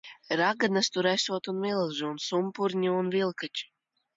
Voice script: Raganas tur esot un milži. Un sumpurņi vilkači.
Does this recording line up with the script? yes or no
no